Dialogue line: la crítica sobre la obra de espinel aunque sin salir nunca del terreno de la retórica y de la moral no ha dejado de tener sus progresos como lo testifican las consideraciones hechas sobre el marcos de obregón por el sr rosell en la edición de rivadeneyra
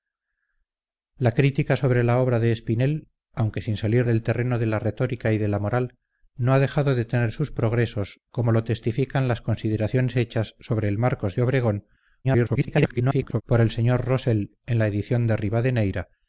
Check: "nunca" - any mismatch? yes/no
yes